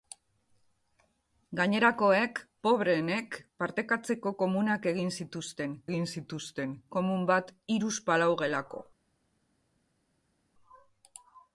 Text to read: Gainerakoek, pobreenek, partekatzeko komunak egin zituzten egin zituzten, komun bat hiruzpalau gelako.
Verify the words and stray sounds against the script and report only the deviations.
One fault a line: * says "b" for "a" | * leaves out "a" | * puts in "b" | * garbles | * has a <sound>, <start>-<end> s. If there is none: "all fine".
all fine